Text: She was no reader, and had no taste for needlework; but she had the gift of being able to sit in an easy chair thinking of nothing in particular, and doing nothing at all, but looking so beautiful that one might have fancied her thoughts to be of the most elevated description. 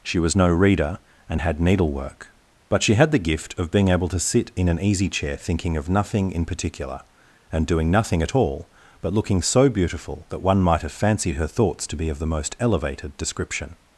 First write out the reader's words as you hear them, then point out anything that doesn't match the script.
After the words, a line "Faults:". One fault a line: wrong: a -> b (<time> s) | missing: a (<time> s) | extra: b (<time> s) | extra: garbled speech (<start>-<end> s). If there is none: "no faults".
She was no reader, and had needlework; but she had the gift of being able to sit in an easy chair thinking of nothing in particular, and doing nothing at all, but looking so beautiful that one might have fancied her thoughts to be of the most elevated description.
Faults:
missing: no taste for (1.6 s)